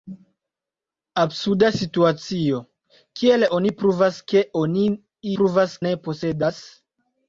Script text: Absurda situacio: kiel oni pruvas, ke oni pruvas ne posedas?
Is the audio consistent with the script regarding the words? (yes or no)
yes